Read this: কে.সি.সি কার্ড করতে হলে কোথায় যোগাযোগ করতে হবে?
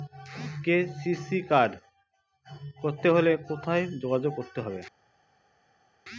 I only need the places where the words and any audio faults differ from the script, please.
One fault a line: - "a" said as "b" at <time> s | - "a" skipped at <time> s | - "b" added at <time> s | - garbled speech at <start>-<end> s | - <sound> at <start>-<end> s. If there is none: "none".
none